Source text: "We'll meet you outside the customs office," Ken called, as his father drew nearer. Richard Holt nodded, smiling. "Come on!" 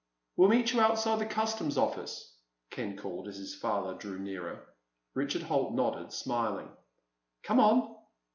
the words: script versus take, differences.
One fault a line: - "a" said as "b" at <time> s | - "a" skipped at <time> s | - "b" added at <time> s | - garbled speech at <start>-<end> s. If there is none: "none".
none